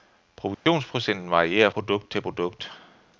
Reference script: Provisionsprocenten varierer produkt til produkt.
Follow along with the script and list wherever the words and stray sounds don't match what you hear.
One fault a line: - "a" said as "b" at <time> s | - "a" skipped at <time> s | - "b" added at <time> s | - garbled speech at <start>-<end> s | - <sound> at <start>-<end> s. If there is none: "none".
- dropout at 0.5-0.7 s